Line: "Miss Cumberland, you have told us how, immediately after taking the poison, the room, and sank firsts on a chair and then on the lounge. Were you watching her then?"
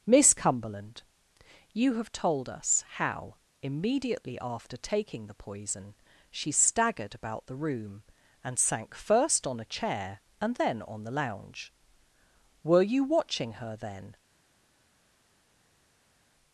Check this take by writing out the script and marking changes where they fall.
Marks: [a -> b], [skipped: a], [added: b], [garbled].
"Miss Cumberland, you have told us how, immediately after taking the poison, [added: she staggered about] the room, and sank [firsts -> first] on a chair and then on the lounge. Were you watching her then?"